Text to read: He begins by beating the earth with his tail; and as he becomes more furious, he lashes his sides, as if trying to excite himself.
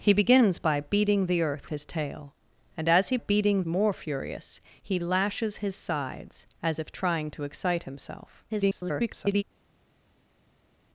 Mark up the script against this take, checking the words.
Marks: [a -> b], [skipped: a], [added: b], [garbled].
He begins by beating the earth [skipped: with] his tail; and as he [becomes -> beating] more furious, he lashes his sides, as if trying to excite himself. [garbled]